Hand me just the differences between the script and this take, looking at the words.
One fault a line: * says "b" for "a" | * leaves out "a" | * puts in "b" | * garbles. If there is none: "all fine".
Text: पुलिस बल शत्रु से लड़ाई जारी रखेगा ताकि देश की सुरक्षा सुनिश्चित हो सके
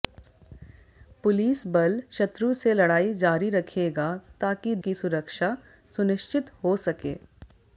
* leaves out "देश"